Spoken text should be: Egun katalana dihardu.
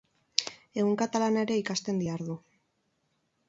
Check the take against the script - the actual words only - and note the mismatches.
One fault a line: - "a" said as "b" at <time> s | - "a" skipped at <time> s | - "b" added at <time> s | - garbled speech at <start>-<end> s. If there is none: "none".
- "ere ikasten" added at 1.5 s